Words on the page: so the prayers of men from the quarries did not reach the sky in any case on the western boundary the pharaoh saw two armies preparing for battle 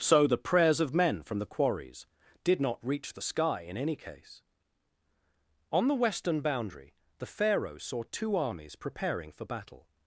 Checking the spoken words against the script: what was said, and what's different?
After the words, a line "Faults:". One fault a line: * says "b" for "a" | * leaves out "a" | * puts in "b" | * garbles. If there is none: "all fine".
so the prayers of men from the quarries did not reach the sky in any case on the western boundary the pharaoh saw two armies preparing for battle
Faults:
all fine